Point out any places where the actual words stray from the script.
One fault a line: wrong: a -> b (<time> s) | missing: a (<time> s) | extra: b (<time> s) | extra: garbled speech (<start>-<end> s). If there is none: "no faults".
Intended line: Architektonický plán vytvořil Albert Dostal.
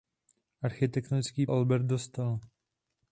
missing: plán vytvořil (1.5 s)